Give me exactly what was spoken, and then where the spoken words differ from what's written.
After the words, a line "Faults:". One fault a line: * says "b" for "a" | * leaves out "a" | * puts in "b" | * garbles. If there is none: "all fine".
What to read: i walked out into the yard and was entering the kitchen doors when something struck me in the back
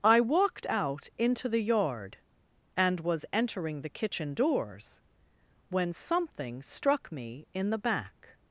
i walked out into the yard and was entering the kitchen doors when something struck me in the back
Faults:
all fine